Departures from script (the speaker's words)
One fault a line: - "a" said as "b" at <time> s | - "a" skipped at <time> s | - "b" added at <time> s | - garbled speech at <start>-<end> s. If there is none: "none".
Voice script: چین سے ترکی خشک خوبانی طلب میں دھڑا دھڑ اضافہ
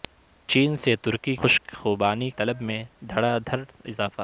none